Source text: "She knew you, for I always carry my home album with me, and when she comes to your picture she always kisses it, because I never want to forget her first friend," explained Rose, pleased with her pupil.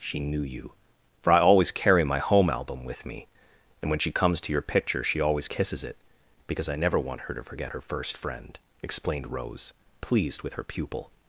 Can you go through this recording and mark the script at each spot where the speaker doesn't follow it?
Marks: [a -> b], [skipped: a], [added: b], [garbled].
"She knew you, for I always carry my home album with me, and when she comes to your picture she always kisses it, because I never want [added: her] to forget her first friend," explained Rose, pleased with her pupil.